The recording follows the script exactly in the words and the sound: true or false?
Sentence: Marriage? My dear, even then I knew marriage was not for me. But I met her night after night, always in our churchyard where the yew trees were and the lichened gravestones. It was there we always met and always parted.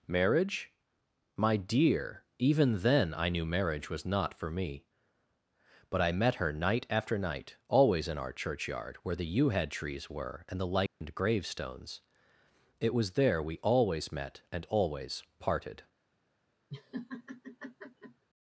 false